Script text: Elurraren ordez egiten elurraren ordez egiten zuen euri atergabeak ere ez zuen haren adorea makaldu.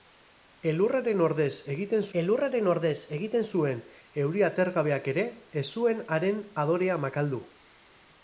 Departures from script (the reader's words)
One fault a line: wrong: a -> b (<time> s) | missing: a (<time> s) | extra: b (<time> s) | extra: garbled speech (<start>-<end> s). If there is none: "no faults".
no faults